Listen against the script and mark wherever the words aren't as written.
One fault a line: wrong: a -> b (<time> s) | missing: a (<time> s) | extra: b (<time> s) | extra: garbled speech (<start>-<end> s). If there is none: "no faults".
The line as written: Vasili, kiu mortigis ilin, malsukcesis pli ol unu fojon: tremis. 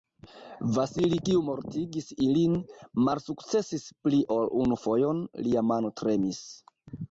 extra: lia mano (5.5 s)